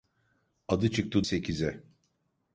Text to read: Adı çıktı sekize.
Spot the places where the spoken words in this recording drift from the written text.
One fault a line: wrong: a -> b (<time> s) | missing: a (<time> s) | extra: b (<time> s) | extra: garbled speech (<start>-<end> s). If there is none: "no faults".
no faults